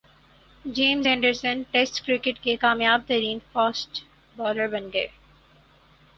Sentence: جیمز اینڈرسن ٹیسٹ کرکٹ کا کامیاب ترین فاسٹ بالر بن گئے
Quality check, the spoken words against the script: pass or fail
fail